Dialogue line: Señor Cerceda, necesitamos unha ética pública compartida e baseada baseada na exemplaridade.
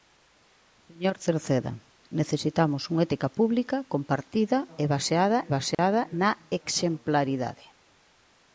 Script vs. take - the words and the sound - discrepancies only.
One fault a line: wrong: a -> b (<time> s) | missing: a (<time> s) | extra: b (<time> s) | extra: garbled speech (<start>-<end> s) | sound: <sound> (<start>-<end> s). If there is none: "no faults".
sound: dropout (5.7-5.8 s)